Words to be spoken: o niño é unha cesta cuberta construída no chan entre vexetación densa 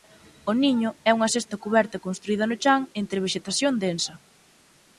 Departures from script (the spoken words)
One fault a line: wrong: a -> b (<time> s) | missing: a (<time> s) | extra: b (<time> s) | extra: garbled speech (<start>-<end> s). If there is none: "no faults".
no faults